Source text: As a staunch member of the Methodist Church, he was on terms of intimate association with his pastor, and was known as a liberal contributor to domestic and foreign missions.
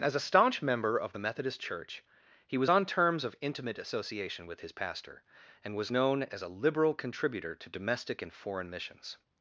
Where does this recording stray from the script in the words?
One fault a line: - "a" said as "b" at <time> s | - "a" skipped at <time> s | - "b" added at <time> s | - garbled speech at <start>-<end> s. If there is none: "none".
none